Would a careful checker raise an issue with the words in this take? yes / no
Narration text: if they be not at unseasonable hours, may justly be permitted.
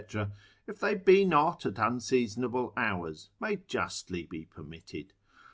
no